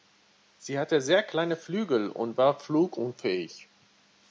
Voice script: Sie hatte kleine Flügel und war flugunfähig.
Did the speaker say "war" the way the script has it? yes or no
yes